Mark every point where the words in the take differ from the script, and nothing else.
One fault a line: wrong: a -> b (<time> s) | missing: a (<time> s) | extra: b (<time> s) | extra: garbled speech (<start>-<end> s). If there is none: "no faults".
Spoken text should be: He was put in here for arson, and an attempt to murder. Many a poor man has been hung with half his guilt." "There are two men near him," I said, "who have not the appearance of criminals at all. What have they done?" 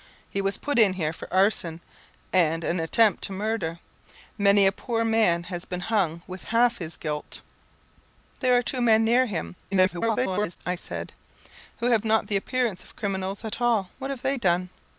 extra: garbled speech (9.7-10.6 s)